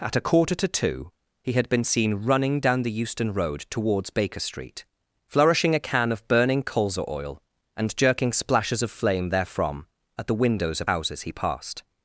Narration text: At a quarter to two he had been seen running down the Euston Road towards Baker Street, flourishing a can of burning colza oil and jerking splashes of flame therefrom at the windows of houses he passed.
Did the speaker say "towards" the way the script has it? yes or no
yes